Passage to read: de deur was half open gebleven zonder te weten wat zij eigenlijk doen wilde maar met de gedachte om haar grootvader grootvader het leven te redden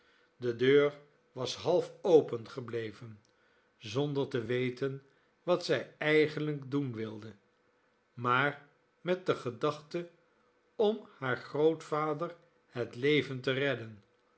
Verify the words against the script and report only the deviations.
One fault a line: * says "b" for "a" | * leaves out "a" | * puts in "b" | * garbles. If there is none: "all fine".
* leaves out "grootvader"